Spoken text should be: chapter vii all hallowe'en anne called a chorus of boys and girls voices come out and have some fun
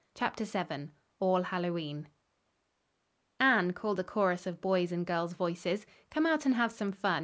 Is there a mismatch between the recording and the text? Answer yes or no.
no